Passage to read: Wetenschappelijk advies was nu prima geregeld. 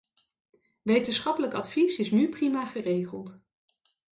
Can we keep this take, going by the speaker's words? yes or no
no